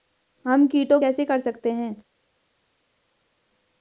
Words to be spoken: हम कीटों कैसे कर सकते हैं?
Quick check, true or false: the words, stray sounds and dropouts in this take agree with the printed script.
true